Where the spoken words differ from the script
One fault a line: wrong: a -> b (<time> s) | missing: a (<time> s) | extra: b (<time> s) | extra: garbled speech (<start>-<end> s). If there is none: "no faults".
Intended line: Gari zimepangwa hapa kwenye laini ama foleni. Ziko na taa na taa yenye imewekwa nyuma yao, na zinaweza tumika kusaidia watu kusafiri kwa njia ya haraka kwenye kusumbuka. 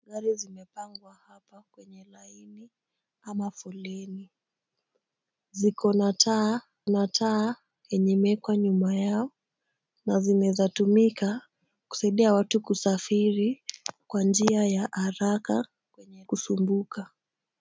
no faults